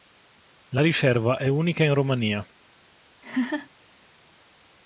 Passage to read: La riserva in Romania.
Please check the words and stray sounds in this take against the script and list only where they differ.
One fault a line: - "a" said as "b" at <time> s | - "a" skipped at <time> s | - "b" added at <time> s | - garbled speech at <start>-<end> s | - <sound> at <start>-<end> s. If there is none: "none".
- "è unica" added at 1.4 s
- laugh at 3.2-3.7 s